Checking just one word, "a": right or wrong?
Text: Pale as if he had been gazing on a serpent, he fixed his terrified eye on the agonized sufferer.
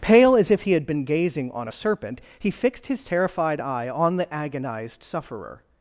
right